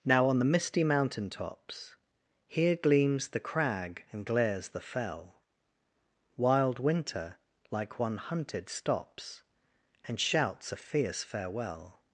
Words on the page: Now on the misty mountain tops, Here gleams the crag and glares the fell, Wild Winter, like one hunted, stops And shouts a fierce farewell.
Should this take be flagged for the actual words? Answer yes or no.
no